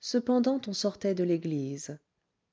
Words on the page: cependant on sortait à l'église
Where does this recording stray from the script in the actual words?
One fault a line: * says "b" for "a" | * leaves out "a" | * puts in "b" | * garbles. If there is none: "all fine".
* says "de" for "à"